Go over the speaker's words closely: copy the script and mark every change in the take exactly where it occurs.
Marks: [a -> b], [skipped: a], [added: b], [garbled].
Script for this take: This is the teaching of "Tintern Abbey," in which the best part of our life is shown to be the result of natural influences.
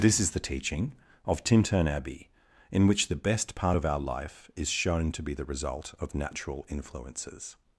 This is the teaching of "Tintern Abbey," in which the best part of our life is shown to be the result of natural influences.